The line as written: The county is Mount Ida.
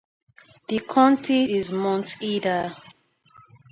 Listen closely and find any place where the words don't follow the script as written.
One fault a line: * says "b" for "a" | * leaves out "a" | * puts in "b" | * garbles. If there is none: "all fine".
all fine